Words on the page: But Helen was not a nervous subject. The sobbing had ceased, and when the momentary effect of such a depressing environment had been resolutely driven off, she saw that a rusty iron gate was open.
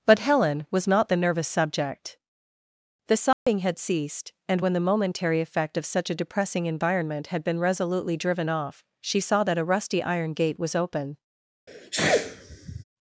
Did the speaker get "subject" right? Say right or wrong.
right